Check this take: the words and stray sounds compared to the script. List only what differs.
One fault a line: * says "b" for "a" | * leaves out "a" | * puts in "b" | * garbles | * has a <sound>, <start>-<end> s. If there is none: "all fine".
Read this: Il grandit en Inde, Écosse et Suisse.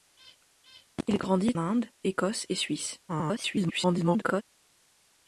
* leaves out "en"
* garbles